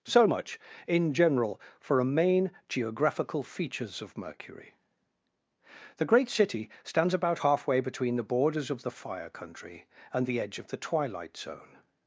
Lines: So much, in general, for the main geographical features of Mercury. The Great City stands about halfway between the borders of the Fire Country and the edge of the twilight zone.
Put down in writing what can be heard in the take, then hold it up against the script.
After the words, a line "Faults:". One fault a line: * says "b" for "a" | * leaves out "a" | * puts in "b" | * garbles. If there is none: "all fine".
So much, in general, for a main geographical features of Mercury. The Great City stands about halfway between the borders of the Fire Country and the edge of the twilight zone.
Faults:
* says "a" for "the"